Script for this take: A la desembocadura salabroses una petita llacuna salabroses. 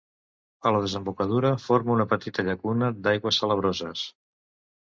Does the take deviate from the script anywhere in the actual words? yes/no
yes